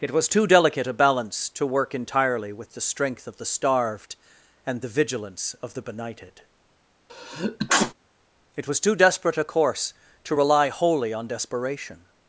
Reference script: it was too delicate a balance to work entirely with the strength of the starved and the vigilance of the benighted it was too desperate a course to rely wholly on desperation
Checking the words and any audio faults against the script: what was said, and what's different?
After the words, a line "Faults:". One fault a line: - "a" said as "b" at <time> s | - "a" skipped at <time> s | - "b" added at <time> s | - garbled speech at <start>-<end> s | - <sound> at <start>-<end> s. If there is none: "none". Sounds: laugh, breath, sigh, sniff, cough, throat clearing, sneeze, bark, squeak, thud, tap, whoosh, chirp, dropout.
it was too delicate a balance to work entirely with the strength of the starved and the vigilance of the benighted it was too desperate a course to rely wholly on desperation
Faults:
- sneeze at 7.1-7.9 s